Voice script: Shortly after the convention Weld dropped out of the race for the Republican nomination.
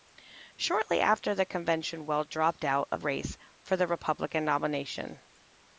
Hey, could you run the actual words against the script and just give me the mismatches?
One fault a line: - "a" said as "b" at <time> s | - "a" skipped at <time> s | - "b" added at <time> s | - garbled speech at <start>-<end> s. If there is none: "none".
- "the" skipped at 3.0 s